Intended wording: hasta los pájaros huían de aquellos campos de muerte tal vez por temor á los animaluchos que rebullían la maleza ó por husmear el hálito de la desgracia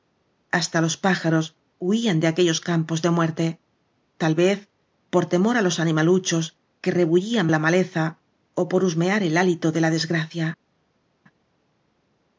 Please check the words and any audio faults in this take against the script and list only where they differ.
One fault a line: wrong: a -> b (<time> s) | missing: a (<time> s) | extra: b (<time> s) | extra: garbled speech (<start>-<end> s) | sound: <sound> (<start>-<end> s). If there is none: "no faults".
no faults